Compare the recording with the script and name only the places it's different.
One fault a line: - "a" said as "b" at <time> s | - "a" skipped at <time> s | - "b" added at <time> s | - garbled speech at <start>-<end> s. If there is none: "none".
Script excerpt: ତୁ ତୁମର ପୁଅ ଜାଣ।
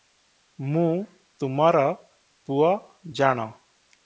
- "ତୁ" said as "ମୁଁ" at 0.6 s